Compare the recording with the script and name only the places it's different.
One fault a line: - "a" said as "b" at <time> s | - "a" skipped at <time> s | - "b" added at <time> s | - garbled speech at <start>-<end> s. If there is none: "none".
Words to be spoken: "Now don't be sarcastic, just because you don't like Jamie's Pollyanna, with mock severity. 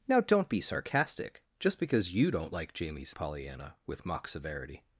none